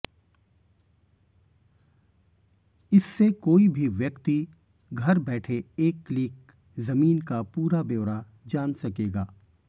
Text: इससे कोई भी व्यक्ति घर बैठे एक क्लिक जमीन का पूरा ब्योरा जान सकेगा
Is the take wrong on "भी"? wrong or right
right